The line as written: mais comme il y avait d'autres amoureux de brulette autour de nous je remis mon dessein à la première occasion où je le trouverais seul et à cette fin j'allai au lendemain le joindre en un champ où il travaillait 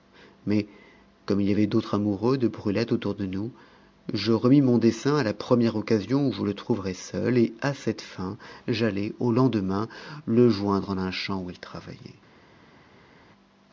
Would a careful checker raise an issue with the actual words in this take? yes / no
no